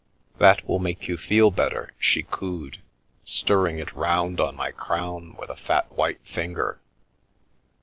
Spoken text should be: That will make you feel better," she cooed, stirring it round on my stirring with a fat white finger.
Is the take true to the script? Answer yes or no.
no